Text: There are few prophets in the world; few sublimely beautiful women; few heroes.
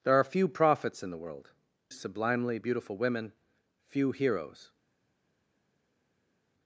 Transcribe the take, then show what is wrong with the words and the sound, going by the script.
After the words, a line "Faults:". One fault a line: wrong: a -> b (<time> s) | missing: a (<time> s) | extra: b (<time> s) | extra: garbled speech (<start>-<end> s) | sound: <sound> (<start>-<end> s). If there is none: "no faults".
There are few prophets in the world; sublimely beautiful women; few heroes.
Faults:
missing: few (1.5 s)